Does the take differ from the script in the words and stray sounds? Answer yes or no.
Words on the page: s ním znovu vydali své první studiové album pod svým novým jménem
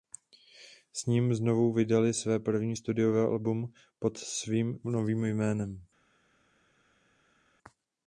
no